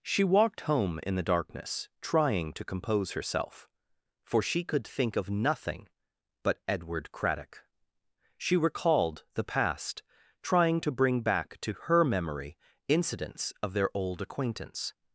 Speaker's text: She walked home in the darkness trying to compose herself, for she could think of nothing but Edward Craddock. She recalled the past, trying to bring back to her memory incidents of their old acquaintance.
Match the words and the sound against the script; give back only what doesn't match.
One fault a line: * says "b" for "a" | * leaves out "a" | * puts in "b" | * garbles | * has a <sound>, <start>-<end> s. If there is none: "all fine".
all fine